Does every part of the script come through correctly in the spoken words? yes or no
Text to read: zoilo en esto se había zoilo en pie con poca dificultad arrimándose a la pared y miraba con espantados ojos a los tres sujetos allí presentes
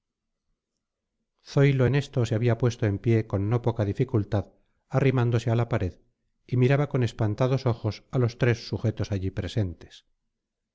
no